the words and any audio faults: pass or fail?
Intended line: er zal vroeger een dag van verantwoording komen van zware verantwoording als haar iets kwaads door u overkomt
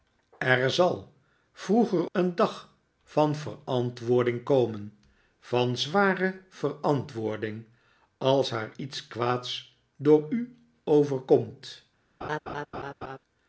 fail